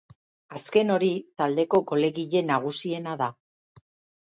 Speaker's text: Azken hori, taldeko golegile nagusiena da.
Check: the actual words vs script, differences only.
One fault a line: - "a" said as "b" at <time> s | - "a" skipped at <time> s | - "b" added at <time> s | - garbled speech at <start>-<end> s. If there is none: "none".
none